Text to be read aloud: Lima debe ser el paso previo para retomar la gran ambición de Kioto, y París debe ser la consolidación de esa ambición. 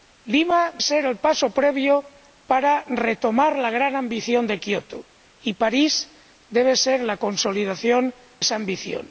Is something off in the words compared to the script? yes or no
yes